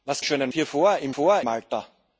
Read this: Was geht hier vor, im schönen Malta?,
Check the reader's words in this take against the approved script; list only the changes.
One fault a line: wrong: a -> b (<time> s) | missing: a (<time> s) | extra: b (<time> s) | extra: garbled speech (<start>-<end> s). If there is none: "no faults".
wrong: geht -> schönen (0.2 s)
wrong: schönen -> vor (1.1 s)